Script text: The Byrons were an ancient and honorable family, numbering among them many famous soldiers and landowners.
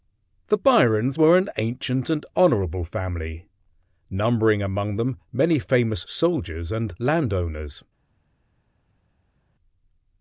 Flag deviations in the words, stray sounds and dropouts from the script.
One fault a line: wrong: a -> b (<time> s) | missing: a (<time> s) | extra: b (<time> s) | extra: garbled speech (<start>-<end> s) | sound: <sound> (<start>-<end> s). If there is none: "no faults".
no faults